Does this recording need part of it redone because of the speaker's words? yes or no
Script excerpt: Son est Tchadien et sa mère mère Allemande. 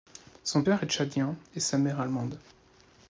yes